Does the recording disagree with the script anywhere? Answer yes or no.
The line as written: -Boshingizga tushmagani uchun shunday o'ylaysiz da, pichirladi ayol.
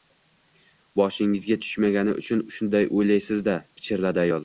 no